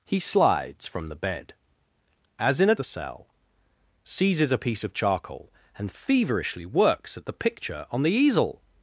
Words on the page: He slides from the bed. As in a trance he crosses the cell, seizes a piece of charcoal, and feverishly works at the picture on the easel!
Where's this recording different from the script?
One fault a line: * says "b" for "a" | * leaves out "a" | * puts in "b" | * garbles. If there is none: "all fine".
* leaves out "trance he crosses"